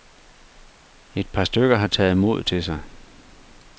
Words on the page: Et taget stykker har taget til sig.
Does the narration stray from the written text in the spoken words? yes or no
yes